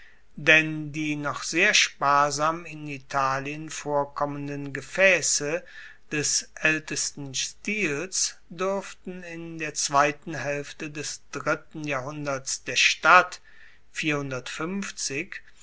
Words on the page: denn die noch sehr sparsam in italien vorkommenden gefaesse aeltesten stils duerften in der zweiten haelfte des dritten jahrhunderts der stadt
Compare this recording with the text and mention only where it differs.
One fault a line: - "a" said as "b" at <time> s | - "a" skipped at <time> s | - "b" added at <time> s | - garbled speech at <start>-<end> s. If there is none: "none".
- "des" added at 6.1 s